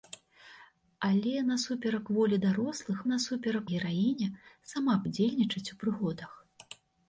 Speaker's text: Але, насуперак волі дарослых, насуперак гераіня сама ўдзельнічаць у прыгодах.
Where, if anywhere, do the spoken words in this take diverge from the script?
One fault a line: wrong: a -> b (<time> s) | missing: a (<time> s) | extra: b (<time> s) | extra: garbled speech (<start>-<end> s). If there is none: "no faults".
no faults